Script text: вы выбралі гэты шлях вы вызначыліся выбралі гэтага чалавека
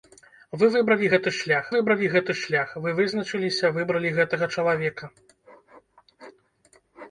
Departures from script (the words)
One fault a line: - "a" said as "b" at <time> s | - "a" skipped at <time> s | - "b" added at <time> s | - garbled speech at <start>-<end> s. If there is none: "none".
- "выбралі гэты шлях" added at 1.7 s